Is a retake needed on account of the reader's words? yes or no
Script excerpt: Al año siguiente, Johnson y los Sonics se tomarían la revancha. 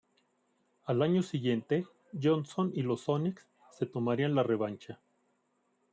no